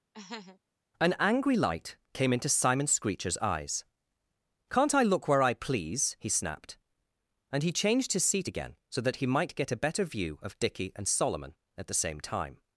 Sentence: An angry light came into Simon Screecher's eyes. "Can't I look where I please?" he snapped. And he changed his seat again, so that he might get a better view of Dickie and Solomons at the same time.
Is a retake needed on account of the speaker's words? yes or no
yes